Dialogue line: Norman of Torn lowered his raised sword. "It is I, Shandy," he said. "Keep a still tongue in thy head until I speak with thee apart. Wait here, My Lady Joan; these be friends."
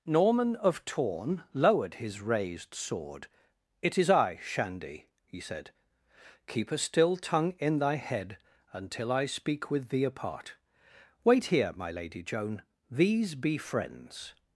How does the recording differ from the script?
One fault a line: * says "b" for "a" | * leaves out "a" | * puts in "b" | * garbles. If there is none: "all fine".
all fine